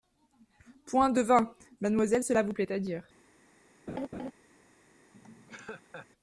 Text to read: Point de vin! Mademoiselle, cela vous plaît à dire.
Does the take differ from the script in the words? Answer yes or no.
no